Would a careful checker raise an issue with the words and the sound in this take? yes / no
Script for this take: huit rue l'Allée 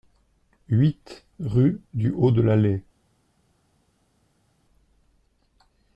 yes